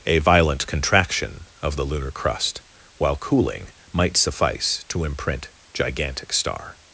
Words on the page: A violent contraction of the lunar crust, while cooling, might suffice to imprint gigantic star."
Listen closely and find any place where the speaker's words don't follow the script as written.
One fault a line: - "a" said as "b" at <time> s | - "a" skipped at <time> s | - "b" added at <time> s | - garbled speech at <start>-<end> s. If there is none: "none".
none